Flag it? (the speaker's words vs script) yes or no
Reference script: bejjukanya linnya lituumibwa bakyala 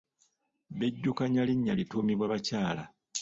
no